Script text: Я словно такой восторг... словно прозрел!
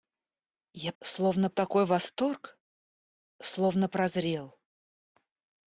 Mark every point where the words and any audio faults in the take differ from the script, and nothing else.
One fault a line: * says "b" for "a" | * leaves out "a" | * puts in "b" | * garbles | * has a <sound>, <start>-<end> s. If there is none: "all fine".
all fine